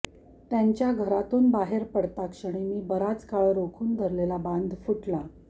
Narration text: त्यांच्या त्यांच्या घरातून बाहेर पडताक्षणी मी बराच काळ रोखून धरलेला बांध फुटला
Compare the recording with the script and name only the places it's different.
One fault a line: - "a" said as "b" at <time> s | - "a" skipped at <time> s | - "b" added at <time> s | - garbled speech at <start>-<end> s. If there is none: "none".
- "त्यांच्या" skipped at 0.9 s